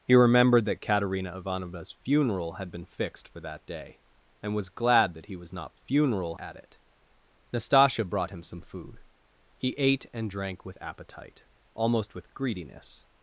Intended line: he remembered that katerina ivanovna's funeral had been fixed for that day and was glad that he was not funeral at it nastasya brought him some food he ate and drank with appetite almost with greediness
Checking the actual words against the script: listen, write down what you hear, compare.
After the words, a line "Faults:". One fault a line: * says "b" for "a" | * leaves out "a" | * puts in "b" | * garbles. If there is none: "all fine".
he remembered that katerina ivanovna's funeral had been fixed for that day and was glad that he was not funeral at it nastasya brought him some food he ate and drank with appetite almost with greediness
Faults:
all fine